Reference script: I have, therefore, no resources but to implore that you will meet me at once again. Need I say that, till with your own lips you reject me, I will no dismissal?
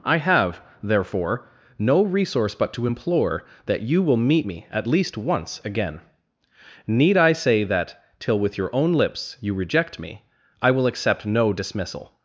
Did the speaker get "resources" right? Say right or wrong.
wrong